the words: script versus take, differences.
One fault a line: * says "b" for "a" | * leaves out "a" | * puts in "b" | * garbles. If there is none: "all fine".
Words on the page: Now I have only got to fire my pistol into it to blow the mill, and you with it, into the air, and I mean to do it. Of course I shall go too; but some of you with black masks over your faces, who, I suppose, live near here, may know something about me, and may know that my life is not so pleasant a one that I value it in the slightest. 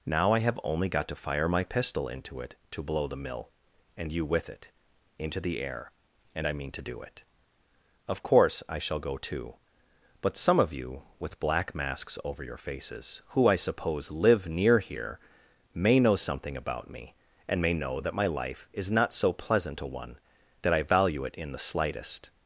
all fine